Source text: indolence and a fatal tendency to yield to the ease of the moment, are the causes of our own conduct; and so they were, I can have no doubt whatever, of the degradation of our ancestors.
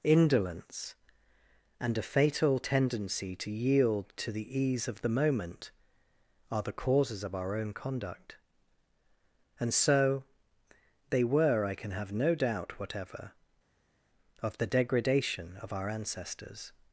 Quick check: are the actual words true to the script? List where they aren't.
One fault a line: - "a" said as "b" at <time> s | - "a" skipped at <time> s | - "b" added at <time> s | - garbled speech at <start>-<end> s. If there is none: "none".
none